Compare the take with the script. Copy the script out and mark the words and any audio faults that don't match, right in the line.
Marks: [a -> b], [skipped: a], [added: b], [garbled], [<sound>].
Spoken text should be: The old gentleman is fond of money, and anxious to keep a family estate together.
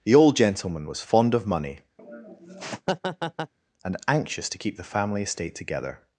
The old gentleman [is -> was] fond of money, [laugh] and anxious to keep [a -> the] family estate together.